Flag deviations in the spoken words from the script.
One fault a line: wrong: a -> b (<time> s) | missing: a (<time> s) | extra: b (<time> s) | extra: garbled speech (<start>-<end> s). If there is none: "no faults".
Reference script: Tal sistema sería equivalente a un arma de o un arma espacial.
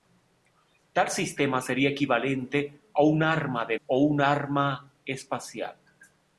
no faults